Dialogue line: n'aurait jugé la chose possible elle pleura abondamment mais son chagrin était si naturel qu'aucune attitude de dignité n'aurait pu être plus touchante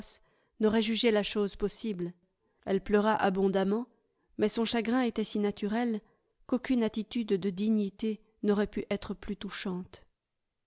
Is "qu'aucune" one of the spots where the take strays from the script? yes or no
no